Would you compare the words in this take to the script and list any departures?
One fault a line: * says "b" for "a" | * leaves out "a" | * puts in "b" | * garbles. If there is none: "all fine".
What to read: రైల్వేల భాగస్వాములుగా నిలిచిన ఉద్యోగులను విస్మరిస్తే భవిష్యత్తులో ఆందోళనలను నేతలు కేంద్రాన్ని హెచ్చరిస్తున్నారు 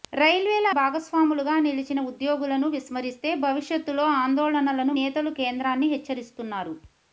all fine